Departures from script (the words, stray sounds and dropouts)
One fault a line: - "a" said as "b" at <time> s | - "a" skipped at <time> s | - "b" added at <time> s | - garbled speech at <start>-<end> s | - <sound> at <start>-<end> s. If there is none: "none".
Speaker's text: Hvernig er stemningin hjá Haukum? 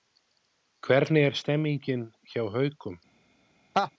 - laugh at 3.7-3.9 s